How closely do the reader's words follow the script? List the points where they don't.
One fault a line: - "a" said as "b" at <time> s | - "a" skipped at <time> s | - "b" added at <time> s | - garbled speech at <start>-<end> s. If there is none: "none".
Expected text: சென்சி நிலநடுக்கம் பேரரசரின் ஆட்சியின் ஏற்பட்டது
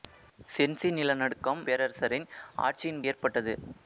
none